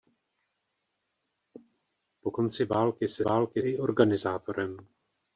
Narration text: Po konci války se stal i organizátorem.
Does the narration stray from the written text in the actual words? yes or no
yes